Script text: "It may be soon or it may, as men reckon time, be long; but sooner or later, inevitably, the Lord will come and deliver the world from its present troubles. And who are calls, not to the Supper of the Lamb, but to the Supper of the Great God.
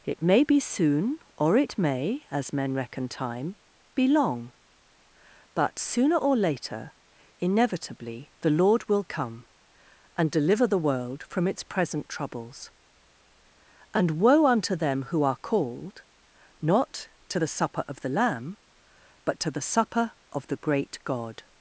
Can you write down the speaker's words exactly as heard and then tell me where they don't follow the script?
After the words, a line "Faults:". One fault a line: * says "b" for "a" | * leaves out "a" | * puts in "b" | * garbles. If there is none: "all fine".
"It may be soon or it may, as men reckon time, be long; but sooner or later, inevitably, the Lord will come and deliver the world from its present troubles. And woe unto them who are called, not to the Supper of the Lamb, but to the Supper of the Great God.
Faults:
* puts in "woe unto them"
* says "called" for "calls"